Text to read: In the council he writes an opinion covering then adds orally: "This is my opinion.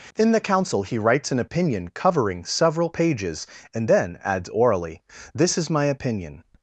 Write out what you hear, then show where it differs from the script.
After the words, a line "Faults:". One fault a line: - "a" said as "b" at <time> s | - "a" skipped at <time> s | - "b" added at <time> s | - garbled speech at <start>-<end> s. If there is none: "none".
In the council he writes an opinion covering several pages and then adds orally: "This is my opinion.
Faults:
- "several pages and" added at 2.4 s